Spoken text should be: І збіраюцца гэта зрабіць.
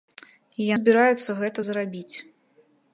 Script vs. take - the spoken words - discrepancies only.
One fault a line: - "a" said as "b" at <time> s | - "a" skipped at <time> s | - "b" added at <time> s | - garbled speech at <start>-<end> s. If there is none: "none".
none